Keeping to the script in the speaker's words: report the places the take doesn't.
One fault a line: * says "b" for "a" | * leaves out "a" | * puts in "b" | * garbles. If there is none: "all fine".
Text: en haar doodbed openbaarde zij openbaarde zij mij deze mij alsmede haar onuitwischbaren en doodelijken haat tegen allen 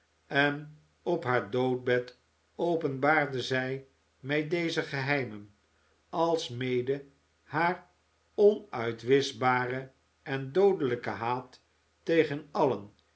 * puts in "op"
* leaves out "openbaarde zij"
* says "geheimen" for "mij"